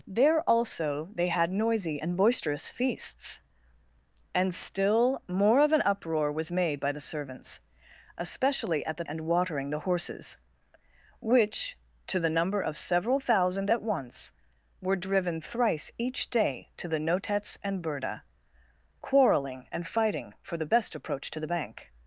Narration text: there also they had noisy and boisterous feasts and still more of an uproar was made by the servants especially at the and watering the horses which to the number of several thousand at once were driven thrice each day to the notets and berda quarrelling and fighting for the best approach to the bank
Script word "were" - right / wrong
right